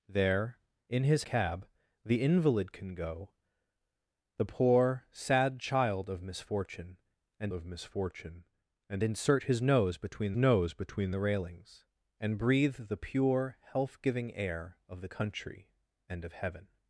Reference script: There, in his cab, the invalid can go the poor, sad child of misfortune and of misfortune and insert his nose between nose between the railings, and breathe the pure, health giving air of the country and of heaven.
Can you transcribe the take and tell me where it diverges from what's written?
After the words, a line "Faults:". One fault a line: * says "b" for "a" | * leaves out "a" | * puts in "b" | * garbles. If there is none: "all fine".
There, in his cab, the invalid can go the poor, sad child of misfortune and of misfortune and insert his nose between nose between the railings, and breathe the pure, health giving air of the country and of heaven.
Faults:
all fine